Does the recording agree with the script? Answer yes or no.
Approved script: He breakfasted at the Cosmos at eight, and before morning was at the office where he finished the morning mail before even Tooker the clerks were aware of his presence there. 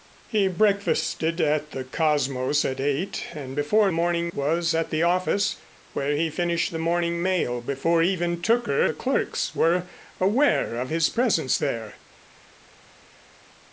yes